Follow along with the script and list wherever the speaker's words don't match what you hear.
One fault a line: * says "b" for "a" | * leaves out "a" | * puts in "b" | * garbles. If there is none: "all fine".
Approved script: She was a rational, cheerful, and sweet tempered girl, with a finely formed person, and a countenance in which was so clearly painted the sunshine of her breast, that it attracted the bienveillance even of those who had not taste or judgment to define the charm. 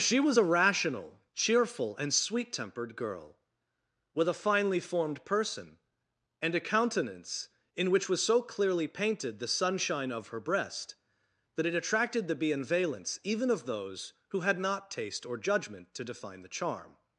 all fine